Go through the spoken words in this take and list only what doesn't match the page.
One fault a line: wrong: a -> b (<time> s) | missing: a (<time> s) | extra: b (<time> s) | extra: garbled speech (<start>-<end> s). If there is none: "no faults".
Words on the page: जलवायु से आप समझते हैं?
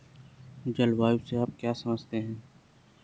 extra: क्या (1.6 s)